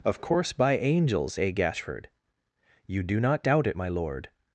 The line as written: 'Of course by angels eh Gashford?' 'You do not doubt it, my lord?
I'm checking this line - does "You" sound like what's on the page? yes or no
yes